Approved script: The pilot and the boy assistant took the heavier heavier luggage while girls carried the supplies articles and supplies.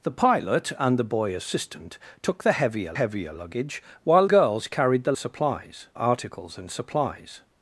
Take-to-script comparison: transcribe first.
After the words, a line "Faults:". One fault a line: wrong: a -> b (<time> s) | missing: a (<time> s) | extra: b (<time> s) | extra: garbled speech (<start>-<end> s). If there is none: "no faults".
The pilot and the boy assistant took the heavier heavier luggage while girls carried the supplies articles and supplies.
Faults:
no faults